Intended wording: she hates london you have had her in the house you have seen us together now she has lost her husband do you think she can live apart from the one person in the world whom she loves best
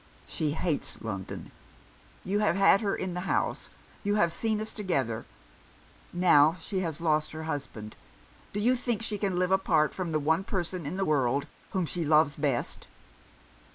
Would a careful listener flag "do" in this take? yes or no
no